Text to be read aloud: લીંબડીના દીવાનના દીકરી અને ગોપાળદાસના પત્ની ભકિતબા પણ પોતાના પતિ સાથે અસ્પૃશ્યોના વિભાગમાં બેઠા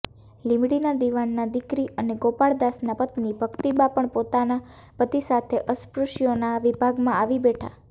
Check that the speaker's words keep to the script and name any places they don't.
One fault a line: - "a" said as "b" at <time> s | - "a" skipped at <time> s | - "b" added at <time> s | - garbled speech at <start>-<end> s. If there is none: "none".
- "આવી" added at 7.2 s